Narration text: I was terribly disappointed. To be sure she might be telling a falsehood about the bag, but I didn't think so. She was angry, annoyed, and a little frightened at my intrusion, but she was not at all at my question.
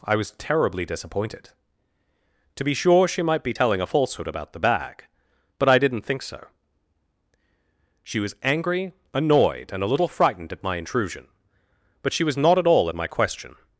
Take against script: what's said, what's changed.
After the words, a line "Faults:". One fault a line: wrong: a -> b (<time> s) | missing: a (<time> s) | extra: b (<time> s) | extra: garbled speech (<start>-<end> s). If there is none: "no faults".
I was terribly disappointed. To be sure she might be telling a falsehood about the bag, but I didn't think so. She was angry, annoyed, and a little frightened at my intrusion, but she was not at all at my question.
Faults:
no faults